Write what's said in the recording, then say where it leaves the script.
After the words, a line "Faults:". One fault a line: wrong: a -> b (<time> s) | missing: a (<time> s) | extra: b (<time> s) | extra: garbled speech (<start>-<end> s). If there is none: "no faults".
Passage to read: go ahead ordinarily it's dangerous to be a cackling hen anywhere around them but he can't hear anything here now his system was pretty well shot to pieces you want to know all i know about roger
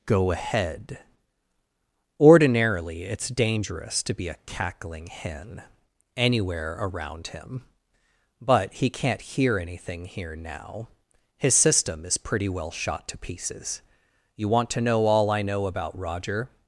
go ahead ordinarily it's dangerous to be a cackling hen anywhere around him but he can't hear anything here now his system is pretty well shot to pieces you want to know all i know about roger
Faults:
wrong: them -> him (7.3 s)
wrong: was -> is (12.1 s)